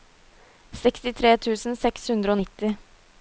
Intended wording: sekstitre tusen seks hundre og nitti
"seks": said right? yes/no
yes